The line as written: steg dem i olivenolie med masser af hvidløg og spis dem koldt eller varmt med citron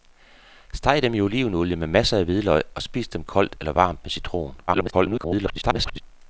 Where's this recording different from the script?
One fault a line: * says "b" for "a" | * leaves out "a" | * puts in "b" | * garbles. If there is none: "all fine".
* garbles